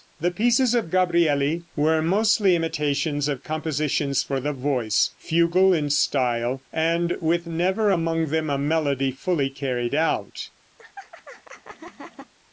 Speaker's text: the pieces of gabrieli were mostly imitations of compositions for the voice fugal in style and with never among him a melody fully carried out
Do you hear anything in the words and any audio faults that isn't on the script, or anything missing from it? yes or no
yes